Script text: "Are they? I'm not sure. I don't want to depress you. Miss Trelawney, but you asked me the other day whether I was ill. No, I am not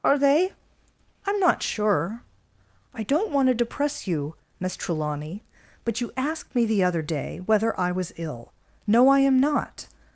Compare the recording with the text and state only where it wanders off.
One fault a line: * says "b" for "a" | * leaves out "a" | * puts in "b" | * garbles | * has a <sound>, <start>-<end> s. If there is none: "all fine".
all fine